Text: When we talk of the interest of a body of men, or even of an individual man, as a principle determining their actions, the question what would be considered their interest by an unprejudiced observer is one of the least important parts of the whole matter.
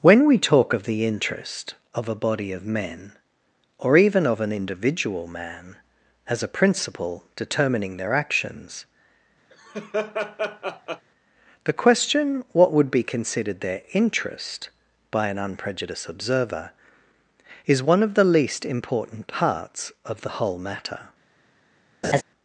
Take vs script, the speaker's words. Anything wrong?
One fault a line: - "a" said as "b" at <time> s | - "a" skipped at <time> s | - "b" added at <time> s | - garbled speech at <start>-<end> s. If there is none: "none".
none